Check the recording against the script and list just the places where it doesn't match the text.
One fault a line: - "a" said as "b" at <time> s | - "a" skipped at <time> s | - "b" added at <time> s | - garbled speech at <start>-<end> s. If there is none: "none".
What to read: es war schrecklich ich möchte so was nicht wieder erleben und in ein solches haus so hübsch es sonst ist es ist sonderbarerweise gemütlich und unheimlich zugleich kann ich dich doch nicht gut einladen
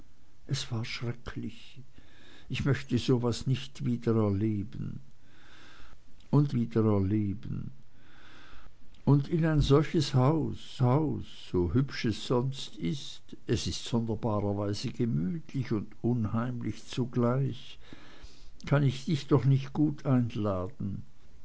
- "wieder erleben und" added at 6.5 s
- "haus" added at 10.8 s